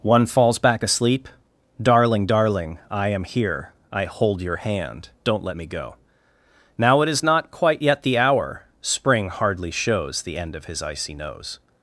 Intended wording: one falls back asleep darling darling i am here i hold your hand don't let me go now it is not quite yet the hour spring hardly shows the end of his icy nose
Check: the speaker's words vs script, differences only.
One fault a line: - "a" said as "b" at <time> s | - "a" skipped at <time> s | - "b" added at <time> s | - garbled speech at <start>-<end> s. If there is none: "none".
none